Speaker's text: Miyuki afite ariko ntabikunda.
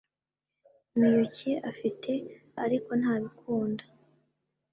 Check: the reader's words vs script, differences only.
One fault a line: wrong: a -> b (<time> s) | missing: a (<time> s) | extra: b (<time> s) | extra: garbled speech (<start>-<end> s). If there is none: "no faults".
no faults